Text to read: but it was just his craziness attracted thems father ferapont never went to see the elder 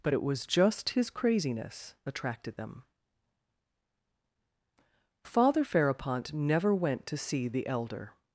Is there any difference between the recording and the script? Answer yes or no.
yes